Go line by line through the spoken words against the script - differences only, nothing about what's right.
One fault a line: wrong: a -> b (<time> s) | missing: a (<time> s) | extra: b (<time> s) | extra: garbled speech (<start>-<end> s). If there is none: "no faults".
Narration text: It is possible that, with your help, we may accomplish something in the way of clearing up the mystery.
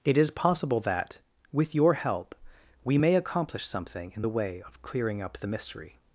no faults